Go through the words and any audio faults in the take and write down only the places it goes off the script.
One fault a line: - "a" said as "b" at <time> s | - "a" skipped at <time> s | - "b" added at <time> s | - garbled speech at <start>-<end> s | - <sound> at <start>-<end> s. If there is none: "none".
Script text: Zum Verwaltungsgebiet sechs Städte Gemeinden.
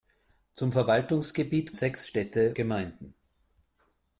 none